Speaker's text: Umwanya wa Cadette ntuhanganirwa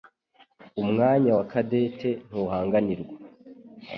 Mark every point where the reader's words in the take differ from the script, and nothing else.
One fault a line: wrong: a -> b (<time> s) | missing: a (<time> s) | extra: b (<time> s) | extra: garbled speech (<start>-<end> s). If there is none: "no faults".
no faults